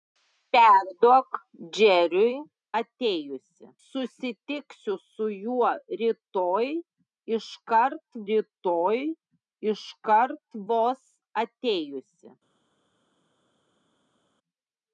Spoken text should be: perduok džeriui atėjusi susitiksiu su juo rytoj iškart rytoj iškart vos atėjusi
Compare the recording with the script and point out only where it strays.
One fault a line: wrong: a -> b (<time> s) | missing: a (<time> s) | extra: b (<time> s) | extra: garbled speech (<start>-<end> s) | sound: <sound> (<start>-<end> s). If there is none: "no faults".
no faults